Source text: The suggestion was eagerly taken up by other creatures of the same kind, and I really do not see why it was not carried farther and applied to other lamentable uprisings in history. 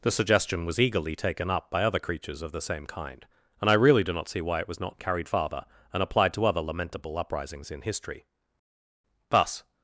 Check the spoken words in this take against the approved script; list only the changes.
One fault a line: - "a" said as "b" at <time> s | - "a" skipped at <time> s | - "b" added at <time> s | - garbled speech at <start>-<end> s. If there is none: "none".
- "Thus" added at 9.3 s